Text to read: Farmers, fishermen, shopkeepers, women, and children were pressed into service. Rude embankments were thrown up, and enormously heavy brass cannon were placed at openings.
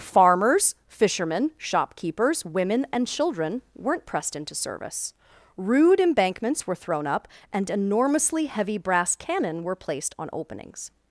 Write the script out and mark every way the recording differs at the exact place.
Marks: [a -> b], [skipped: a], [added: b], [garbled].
Farmers, fishermen, shopkeepers, women, and children [were -> weren't] pressed into service. Rude embankments were thrown up, and enormously heavy brass cannon were placed [at -> on] openings.